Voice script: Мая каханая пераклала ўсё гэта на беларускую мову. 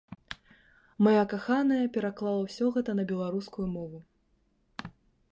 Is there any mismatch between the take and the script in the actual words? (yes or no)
no